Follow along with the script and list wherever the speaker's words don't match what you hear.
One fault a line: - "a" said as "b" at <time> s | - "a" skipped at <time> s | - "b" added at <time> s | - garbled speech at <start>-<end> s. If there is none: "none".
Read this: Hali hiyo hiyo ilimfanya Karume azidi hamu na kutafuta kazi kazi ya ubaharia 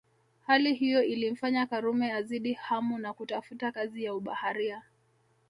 - "hiyo" skipped at 1.0 s
- "kazi" skipped at 4.0 s